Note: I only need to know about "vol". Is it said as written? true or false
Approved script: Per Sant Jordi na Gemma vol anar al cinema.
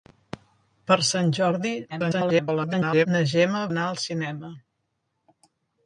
false